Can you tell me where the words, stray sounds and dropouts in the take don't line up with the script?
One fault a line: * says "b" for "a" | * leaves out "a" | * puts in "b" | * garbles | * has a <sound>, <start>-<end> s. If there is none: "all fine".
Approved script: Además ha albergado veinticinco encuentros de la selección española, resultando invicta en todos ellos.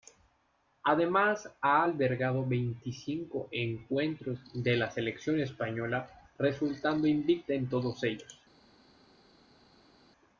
all fine